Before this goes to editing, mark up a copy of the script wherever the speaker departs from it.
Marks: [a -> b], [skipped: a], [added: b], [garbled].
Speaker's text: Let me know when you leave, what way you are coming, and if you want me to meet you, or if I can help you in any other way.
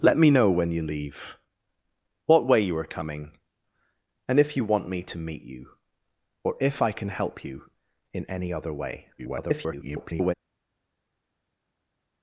Let me know when you leave, what way you are coming, and if you want me to meet you, or if I can help you in any other way. [garbled]